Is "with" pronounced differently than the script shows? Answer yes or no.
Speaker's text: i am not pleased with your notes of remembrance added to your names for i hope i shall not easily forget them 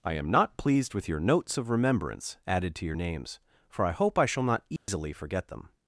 no